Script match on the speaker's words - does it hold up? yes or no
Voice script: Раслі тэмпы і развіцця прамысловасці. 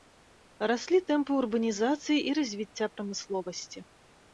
no